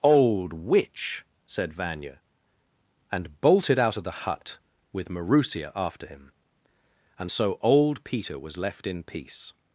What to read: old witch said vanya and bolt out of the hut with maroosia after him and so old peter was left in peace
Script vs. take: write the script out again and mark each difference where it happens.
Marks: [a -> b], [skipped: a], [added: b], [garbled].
old witch said vanya and [bolt -> bolted] out of the hut with maroosia after him and so old peter was left in peace